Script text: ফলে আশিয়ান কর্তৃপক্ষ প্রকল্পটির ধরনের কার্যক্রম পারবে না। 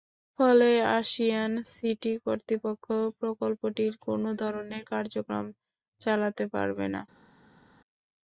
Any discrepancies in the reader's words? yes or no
yes